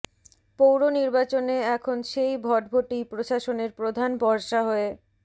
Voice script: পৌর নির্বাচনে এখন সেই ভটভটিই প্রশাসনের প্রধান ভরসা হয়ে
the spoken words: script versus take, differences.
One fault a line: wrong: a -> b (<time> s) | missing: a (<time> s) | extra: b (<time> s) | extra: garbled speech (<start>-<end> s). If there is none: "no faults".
no faults